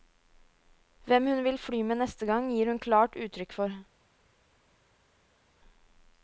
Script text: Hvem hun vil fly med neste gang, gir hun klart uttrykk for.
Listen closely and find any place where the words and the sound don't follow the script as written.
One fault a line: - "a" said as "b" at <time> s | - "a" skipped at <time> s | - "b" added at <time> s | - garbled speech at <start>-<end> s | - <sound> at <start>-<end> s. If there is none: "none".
none